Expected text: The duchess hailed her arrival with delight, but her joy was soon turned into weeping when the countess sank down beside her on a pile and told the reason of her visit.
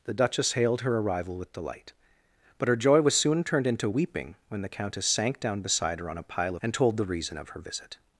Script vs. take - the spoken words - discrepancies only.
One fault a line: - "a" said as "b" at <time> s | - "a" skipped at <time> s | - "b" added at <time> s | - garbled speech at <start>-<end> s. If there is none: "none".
none